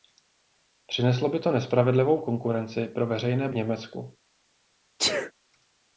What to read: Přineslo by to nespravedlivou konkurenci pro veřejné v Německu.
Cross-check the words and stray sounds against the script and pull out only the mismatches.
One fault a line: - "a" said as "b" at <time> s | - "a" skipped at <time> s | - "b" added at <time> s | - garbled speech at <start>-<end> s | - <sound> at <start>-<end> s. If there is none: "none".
- sneeze at 5.0-5.3 s